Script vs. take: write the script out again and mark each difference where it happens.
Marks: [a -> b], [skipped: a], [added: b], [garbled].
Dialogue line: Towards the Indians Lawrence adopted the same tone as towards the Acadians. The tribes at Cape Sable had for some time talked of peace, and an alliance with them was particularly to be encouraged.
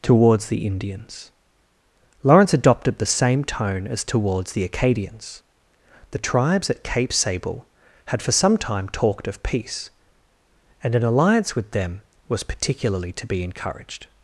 Towards the Indians Lawrence adopted the same tone as towards the Acadians. The tribes at Cape Sable had for some time talked of peace, and an alliance with them was particularly to be encouraged.